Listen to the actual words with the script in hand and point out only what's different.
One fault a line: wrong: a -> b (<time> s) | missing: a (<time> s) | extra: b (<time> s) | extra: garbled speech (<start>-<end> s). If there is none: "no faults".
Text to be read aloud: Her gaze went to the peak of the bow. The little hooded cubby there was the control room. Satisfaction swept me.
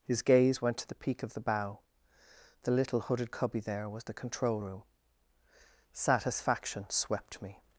wrong: Her -> His (0.0 s)